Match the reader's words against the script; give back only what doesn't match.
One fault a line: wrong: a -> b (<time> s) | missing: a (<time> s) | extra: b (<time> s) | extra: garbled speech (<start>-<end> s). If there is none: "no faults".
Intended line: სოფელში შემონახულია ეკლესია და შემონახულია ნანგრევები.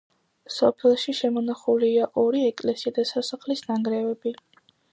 extra: ორი (2.2 s)
wrong: შემონახულია -> სასახლის (3.1 s)